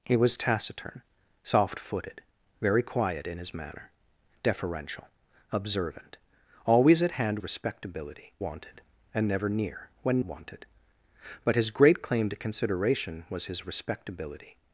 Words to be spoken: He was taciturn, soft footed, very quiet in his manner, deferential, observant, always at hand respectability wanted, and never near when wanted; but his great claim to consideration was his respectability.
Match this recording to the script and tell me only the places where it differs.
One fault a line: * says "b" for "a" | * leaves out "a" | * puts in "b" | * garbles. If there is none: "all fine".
all fine